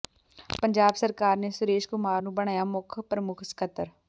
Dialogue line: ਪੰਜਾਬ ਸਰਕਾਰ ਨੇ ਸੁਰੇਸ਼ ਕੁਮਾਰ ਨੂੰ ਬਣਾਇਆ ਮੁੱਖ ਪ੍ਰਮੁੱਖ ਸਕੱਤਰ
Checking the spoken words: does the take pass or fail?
pass